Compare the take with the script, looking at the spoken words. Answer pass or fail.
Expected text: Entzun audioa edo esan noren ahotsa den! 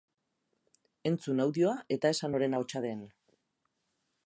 fail